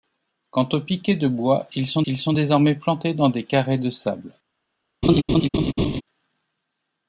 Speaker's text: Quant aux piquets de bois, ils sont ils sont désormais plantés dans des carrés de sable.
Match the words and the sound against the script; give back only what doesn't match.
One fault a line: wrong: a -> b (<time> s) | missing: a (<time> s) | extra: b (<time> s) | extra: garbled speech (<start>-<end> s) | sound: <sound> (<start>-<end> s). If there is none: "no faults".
sound: laugh (5.0-6.0 s)